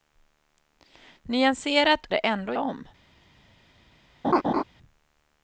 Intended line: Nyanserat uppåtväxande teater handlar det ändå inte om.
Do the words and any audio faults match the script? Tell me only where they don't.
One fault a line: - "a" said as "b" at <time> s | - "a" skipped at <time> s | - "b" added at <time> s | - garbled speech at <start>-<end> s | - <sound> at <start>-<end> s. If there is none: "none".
- "uppåtväxande teater handlar" skipped at 2.1 s
- "inte" skipped at 2.5 s
- laugh at 4.2-4.6 s